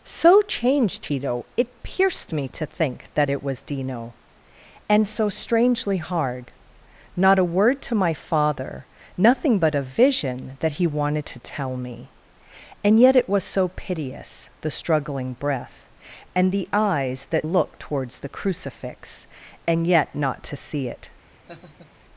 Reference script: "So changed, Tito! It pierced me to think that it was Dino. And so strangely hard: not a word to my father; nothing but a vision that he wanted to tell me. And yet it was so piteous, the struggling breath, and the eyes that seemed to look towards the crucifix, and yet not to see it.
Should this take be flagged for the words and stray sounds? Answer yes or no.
yes